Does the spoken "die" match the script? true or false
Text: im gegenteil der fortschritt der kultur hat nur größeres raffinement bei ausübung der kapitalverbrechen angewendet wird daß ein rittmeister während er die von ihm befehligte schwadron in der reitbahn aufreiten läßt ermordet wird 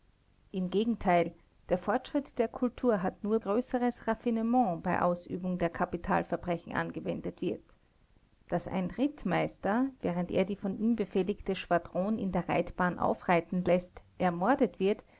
true